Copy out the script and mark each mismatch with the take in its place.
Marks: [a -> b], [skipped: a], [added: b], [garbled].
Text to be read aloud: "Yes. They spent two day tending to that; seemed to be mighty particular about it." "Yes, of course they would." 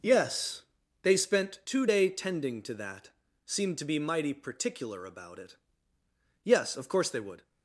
"Yes. They spent two day tending to that; seemed to be mighty particular about it." "Yes, of course they would."